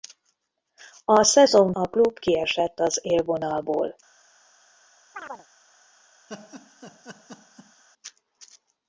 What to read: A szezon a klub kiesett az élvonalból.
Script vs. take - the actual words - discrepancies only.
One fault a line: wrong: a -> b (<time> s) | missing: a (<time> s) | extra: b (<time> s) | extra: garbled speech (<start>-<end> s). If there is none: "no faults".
no faults